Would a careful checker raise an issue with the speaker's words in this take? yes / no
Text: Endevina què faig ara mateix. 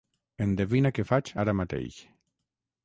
no